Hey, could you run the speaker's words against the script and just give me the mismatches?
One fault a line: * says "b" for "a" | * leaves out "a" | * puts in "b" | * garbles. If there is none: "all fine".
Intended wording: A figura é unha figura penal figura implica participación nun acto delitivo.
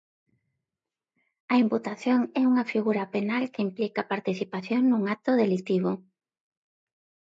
* says "imputación" for "figura"
* says "que" for "figura"